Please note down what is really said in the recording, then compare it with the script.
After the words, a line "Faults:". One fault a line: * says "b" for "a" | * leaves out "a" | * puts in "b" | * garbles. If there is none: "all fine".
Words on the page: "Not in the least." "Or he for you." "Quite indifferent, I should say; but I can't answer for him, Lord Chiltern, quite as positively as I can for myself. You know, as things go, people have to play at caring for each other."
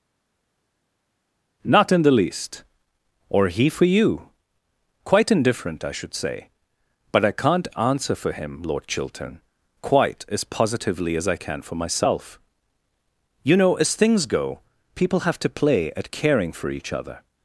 "Not in the least." "Or he for you." "Quite indifferent, I should say; but I can't answer for him, Lord Chiltern, quite as positively as I can for myself. You know, as things go, people have to play at caring for each other."
Faults:
all fine